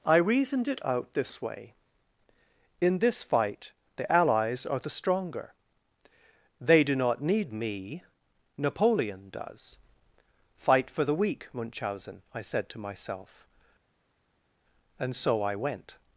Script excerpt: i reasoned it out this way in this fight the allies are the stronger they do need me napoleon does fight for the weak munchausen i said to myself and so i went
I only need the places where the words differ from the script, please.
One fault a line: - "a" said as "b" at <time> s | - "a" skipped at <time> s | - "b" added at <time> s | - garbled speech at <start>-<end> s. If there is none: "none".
- "not" added at 7.0 s